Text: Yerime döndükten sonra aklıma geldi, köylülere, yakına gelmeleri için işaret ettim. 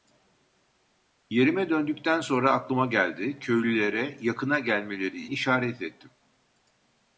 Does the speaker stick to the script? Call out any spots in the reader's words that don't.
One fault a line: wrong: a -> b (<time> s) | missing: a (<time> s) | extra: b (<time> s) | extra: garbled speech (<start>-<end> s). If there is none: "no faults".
missing: için (5.2 s)